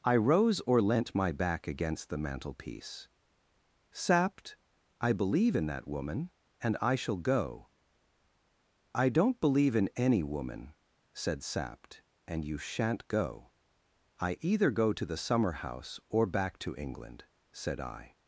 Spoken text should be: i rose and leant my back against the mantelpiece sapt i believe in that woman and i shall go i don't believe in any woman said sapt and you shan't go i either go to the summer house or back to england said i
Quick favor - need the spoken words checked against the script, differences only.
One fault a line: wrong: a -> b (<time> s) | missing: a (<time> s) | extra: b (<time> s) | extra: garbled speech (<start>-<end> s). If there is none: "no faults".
wrong: and -> or (0.6 s)